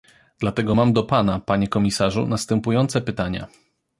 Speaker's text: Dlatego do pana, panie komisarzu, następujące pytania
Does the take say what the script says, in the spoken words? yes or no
no